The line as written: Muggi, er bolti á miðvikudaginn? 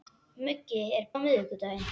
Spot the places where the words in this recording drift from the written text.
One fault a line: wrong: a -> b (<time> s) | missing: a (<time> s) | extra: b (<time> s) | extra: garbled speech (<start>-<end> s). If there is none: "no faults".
missing: bolti (1.1 s)